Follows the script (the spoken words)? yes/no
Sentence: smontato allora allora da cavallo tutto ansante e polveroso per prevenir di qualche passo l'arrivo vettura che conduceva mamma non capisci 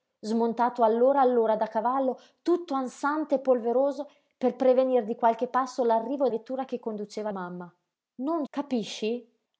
yes